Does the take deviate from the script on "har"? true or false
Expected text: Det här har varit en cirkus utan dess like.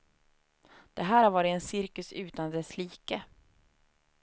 false